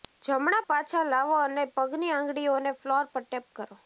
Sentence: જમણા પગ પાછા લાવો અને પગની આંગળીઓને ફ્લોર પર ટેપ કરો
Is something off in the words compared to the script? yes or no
yes